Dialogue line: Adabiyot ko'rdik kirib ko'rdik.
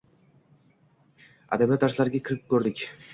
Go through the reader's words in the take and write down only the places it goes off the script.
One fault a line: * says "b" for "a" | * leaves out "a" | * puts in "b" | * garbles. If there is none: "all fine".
* says "darslariga" for "ko'rdik"